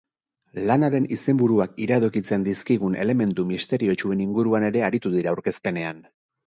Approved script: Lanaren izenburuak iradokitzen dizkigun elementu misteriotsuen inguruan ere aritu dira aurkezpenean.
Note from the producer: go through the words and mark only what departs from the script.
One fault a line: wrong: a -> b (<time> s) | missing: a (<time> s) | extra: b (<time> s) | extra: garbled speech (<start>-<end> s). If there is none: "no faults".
no faults